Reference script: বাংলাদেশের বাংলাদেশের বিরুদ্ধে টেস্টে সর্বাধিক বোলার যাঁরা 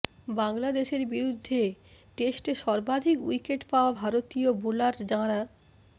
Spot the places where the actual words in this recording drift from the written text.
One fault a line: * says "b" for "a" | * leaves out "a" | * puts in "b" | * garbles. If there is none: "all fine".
* leaves out "বাংলাদেশের"
* puts in "উইকেট পাওয়া ভারতীয়"